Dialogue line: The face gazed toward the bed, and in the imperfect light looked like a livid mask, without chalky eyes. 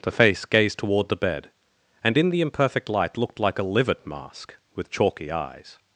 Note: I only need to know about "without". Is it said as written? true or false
false